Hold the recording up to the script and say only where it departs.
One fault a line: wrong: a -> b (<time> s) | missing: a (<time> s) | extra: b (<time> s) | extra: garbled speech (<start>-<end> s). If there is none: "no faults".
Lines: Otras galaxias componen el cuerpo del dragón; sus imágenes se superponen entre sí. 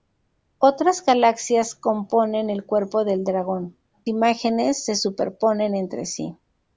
missing: sus (3.8 s)